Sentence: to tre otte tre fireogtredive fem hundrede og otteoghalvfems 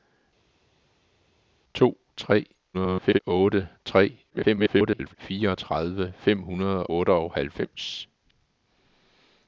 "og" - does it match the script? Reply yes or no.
no